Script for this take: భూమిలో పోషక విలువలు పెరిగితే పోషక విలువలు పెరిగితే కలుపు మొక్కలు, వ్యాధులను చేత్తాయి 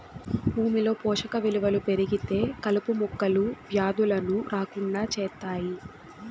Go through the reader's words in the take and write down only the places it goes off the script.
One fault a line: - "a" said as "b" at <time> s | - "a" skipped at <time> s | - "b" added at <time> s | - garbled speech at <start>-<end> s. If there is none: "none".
- "పోషక విలువలు పెరిగితే" skipped at 2.4 s
- "రాకుండా" added at 4.5 s